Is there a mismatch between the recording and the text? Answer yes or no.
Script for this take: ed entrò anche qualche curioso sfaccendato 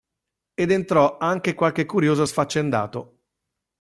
no